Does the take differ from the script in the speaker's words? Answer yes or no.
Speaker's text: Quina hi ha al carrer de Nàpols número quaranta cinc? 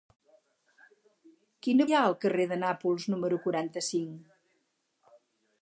no